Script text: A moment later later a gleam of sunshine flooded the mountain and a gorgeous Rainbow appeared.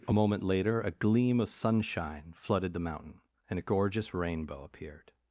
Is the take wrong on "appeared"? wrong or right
right